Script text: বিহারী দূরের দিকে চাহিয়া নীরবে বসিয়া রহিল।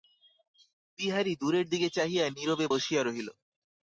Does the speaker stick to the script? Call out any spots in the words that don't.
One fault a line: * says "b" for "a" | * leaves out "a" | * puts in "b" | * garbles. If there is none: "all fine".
all fine